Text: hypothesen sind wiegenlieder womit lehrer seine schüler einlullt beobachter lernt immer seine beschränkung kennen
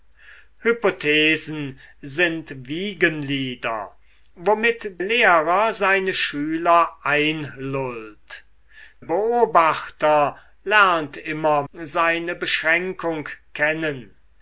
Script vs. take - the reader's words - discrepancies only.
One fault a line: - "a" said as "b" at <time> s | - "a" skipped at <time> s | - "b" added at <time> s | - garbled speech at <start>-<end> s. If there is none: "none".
none